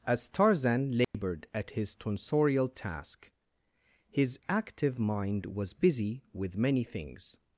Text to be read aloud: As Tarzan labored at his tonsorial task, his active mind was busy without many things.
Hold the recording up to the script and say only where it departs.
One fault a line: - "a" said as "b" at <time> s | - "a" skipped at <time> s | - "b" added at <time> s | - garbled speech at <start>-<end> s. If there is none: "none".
- "without" said as "with" at 6.3 s